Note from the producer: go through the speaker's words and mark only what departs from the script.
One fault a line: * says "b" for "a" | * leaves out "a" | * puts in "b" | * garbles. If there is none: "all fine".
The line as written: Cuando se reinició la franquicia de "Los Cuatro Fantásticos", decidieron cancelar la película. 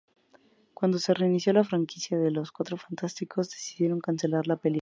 all fine